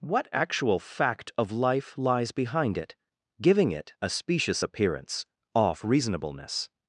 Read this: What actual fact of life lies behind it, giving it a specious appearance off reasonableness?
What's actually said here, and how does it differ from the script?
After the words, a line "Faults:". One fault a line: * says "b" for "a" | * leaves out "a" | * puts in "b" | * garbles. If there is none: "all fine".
What actual fact of life lies behind it, giving it a specious appearance off reasonableness?
Faults:
all fine